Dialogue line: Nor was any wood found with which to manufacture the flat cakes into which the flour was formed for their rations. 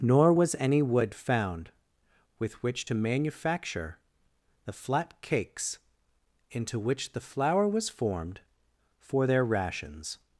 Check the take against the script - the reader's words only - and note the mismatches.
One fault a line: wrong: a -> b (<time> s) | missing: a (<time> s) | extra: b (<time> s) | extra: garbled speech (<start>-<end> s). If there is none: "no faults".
no faults